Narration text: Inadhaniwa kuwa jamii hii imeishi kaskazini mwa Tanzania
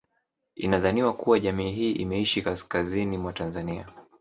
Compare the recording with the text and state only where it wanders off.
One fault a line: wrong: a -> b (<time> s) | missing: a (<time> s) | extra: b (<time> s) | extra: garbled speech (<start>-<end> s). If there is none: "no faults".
no faults